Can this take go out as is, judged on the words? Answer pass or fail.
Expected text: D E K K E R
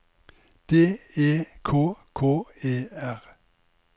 pass